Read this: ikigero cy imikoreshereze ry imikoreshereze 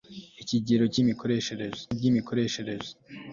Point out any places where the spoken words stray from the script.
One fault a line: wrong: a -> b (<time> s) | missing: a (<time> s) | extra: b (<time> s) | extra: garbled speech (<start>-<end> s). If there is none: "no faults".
no faults